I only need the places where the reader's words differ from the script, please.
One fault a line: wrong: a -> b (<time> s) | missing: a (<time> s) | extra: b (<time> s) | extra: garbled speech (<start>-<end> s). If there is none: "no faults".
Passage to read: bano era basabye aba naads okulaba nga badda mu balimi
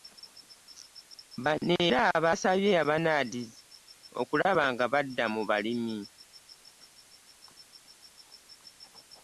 no faults